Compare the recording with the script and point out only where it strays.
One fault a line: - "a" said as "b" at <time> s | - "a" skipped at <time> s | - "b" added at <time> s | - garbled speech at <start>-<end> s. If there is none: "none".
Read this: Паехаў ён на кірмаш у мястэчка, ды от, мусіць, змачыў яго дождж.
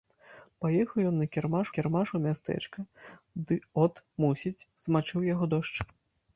- "кірмаш" added at 1.8 s